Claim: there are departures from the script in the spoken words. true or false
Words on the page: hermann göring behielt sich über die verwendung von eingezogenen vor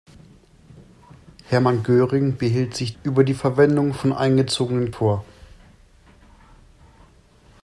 false